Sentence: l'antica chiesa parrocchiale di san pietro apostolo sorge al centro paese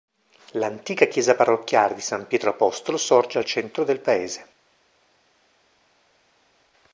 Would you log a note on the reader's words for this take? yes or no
yes